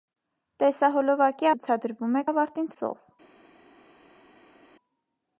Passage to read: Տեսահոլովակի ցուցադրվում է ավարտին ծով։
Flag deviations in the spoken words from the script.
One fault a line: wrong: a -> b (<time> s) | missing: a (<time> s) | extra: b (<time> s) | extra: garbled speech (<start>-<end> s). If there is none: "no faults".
no faults